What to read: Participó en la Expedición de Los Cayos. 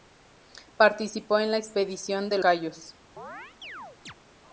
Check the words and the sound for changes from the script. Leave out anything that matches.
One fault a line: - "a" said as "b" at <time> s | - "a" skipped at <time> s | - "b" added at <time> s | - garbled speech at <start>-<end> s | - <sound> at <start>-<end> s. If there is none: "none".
- "Los" skipped at 2.4 s
- chirp at 3.2-4.1 s